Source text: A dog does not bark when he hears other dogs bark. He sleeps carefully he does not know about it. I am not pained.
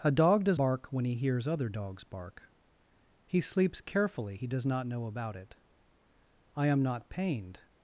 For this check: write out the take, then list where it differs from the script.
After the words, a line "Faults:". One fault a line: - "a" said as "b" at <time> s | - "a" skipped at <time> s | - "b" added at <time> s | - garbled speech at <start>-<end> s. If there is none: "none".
A dog does bark when he hears other dogs bark. He sleeps carefully he does not know about it. I am not pained.
Faults:
- "not" skipped at 0.6 s